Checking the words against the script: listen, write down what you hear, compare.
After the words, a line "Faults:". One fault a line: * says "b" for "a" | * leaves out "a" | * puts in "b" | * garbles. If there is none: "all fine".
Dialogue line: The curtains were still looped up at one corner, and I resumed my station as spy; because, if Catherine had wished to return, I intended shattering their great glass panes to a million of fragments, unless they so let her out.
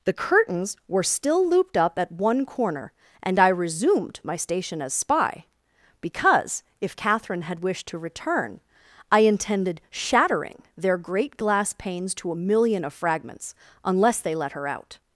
The curtains were still looped up at one corner, and I resumed my station as spy; because, if Catherine had wished to return, I intended shattering their great glass panes to a million of fragments, unless they let her out.
Faults:
* leaves out "so"